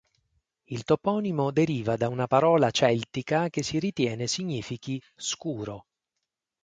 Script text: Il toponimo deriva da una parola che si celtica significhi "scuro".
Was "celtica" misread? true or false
true